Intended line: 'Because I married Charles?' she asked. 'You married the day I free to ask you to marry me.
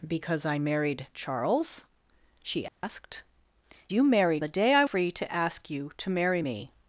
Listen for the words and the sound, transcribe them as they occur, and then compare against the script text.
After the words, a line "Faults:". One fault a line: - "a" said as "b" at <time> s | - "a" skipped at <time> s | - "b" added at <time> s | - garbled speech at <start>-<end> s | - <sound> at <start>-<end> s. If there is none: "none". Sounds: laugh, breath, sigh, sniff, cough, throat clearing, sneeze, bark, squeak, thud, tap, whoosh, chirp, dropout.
'Because I married Charles?' she asked. 'You married the day I free to ask you to marry me.
Faults:
- dropout at 2.7-2.8 s